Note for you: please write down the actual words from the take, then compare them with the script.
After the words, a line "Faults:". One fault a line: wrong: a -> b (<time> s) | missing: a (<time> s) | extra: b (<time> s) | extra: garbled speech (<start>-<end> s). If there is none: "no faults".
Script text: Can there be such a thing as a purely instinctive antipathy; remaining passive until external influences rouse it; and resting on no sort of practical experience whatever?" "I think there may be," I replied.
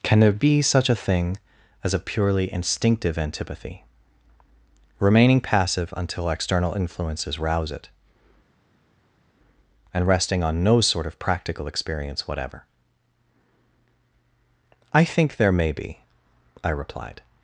Can there be such a thing as a purely instinctive antipathy; remaining passive until external influences rouse it; and resting on no sort of practical experience whatever?" "I think there may be," I replied.
Faults:
no faults